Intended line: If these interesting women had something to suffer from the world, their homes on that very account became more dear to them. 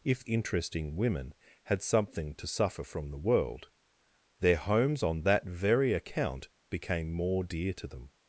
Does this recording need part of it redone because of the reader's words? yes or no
yes